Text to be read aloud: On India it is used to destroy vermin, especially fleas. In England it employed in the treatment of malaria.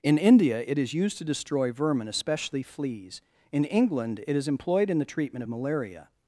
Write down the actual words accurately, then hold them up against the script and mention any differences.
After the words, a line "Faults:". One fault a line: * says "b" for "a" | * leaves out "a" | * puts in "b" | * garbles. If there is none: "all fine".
In India it is used to destroy vermin, especially fleas. In England it is employed in the treatment of malaria.
Faults:
* says "In" for "On"
* puts in "is"